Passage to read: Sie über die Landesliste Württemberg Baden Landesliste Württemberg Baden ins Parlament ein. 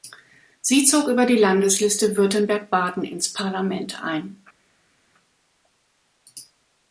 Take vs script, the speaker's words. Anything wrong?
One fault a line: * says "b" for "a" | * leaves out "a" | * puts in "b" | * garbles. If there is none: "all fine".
* puts in "zog"
* leaves out "Landesliste Württemberg Baden"